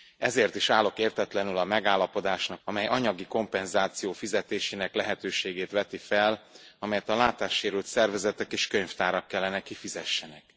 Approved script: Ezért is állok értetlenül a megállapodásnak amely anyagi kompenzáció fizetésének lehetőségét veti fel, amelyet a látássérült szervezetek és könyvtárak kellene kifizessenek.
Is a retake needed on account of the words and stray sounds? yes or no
no